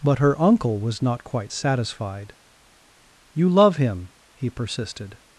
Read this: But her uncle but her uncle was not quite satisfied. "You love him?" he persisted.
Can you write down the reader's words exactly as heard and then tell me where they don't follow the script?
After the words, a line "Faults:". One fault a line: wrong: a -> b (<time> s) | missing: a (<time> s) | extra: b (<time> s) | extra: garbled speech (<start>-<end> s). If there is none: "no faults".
But her uncle was not quite satisfied. "You love him?" he persisted.
Faults:
missing: but her uncle (0.8 s)